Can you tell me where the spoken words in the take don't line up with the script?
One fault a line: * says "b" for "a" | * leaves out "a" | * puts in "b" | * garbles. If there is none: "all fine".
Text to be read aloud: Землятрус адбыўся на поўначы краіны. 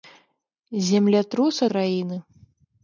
* leaves out "адбыўся на поўначы"